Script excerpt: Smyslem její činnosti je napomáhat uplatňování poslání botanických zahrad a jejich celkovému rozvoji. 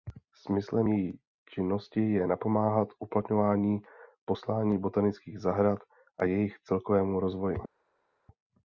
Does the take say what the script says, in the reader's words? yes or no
yes